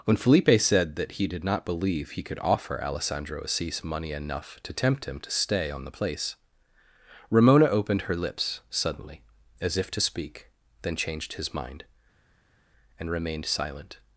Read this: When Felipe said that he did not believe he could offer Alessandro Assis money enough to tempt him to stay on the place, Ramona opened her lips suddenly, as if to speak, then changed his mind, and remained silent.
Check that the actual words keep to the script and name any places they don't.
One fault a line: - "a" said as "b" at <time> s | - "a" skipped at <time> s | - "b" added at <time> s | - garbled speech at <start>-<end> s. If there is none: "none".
none